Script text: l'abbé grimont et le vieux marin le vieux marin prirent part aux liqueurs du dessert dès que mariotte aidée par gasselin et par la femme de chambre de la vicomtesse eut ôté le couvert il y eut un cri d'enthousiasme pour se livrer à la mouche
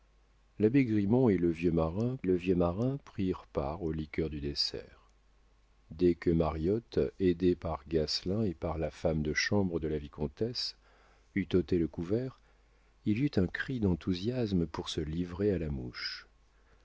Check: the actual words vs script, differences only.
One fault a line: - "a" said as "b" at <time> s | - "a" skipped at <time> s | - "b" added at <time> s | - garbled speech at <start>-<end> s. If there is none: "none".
none